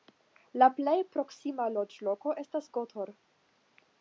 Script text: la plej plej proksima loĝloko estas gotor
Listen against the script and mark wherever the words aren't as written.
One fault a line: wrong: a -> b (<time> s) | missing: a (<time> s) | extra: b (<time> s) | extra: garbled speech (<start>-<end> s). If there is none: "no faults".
missing: plej (0.9 s)